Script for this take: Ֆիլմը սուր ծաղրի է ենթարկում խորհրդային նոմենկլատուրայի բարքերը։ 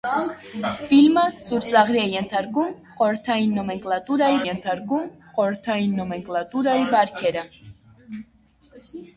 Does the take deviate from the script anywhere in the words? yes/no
yes